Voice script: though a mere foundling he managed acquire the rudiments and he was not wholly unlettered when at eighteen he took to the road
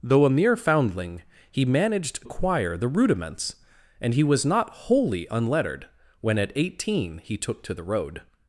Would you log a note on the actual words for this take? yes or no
no